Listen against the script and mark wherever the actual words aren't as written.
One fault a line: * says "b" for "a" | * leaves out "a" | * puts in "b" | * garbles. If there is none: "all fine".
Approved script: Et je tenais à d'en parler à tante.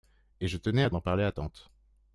all fine